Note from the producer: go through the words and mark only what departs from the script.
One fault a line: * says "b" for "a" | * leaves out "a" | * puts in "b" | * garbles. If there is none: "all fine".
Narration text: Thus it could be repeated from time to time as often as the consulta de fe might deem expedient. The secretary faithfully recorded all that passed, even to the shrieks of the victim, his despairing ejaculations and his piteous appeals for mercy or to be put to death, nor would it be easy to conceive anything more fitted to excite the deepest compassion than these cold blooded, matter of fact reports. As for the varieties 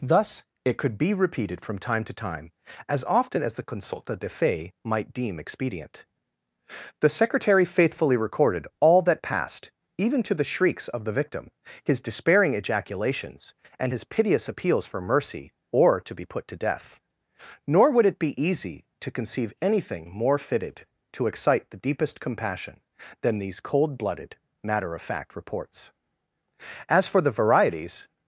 all fine